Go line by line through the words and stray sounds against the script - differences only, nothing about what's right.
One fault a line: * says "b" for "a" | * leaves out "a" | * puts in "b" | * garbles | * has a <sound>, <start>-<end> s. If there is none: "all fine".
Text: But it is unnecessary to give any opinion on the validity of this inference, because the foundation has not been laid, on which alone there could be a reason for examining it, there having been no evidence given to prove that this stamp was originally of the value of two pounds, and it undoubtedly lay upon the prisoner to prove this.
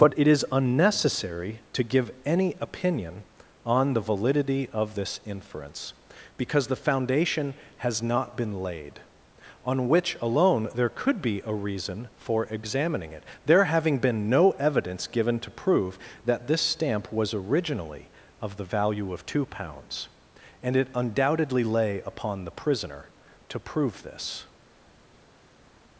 all fine